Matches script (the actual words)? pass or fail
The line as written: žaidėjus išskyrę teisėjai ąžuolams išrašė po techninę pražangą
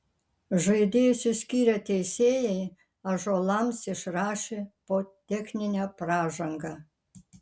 pass